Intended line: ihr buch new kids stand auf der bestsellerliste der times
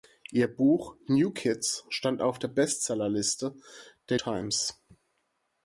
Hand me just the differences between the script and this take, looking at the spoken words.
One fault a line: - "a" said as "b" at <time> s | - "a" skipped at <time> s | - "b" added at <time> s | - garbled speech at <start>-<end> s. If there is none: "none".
none